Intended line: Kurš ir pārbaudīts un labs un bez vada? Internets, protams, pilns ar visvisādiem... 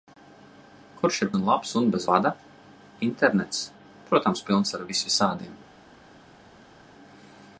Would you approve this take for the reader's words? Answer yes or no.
no